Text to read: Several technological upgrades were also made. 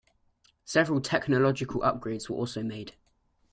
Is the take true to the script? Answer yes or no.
yes